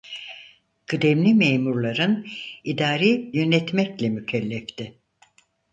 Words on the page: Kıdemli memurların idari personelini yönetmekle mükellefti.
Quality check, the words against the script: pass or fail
fail